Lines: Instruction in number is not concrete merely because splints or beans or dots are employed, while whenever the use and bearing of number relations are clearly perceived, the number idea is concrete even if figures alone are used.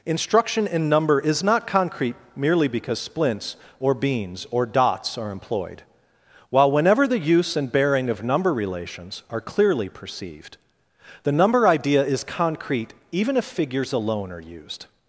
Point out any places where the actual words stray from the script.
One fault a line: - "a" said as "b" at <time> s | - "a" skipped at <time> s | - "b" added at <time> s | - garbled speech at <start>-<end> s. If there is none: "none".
none